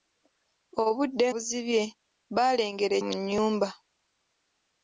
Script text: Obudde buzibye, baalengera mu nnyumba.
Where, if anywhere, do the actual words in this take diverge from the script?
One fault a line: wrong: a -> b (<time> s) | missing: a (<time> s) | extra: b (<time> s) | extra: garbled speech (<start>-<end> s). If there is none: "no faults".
no faults